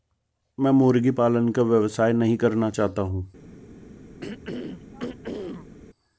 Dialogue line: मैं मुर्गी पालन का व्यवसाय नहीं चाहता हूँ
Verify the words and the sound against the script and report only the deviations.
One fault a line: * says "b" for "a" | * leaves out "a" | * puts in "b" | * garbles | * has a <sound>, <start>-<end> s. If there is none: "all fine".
* puts in "करना"
* has a throat clearing, 4.2-5.8 s